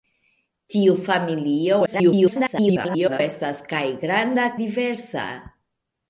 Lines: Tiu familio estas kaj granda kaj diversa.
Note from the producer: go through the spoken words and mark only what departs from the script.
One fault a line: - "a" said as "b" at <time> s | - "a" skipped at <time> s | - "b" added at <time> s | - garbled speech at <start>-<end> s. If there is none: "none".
- garbled speech at 1.9-3.2 s
- "kaj" skipped at 4.5 s